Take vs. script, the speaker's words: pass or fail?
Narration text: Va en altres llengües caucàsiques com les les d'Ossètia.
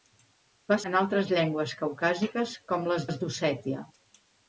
pass